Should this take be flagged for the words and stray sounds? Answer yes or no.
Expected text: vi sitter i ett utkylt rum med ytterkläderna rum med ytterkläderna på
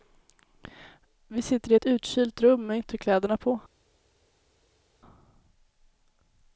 yes